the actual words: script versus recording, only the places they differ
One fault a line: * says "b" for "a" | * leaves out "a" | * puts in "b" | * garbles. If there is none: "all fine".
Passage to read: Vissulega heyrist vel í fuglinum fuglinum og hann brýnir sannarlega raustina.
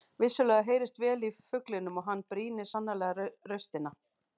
* leaves out "fuglinum"